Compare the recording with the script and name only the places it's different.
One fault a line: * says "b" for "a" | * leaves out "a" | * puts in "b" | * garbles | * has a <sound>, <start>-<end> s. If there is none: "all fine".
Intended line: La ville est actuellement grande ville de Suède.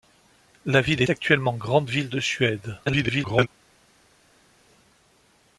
* leaves out "est"
* garbles